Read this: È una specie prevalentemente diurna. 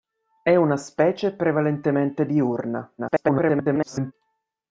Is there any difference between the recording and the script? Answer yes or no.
yes